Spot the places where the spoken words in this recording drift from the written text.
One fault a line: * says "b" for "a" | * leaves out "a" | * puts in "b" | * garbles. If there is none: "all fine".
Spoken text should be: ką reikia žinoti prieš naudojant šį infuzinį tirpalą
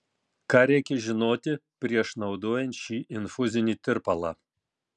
all fine